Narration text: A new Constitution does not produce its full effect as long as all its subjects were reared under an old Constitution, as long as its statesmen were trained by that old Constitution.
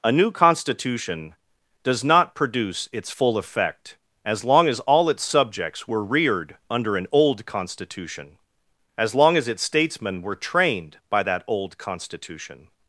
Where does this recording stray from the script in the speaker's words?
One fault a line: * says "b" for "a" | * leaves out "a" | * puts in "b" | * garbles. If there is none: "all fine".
all fine